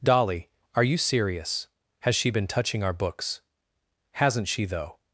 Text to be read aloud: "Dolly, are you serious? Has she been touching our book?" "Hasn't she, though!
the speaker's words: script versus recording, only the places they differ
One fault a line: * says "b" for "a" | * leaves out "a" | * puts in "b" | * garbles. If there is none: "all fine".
* says "books" for "book"